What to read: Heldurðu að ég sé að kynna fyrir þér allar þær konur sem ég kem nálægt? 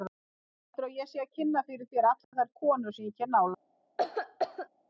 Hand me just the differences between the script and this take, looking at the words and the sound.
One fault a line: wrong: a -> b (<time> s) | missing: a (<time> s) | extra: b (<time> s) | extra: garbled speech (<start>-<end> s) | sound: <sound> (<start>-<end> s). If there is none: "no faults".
sound: dropout (2.2-2.3 s)
sound: cough (4.0-4.7 s)